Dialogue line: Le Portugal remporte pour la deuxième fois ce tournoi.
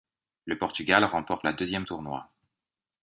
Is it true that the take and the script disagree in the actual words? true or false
true